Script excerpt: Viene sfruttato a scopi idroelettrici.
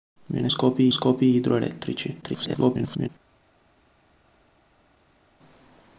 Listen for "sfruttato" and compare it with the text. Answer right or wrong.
wrong